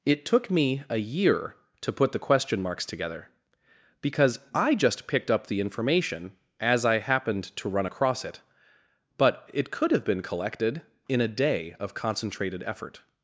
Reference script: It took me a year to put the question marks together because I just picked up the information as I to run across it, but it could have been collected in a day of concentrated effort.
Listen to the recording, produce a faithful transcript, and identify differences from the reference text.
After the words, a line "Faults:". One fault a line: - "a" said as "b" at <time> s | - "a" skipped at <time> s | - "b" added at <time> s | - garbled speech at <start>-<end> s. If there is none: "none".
It took me a year to put the question marks together because I just picked up the information as I happened to run across it, but it could have been collected in a day of concentrated effort.
Faults:
- "happened" added at 7.0 s